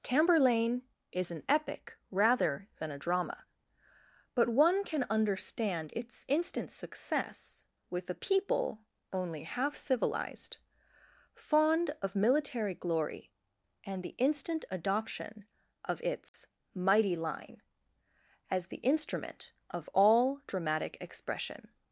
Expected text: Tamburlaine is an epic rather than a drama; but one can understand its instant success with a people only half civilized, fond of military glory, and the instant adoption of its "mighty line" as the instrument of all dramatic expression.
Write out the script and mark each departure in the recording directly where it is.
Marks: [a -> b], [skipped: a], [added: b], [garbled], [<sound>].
Tamburlaine is an epic rather than a drama; but one can understand its instant success with a people only half civilized, fond of military glory, and the instant adoption of its [dropout] "mighty line" as the instrument of all dramatic expression.